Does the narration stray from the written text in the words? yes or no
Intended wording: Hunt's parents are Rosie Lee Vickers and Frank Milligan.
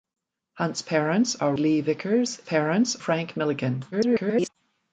yes